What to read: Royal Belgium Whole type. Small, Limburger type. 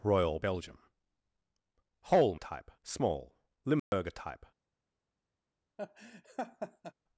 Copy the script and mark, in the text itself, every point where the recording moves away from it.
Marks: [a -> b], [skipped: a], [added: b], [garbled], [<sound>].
Royal Belgium Whole type. Small, Limburger [dropout] type. [laugh]